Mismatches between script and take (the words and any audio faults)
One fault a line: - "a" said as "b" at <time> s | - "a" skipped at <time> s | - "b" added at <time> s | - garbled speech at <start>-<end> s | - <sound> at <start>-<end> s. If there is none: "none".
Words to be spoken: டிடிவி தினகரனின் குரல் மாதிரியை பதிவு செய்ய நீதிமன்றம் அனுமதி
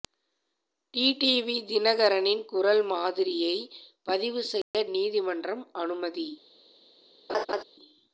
- dropout at 4.6-4.7 s
- laugh at 7.3-7.6 s